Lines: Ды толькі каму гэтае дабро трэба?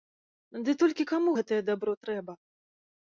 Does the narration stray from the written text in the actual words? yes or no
no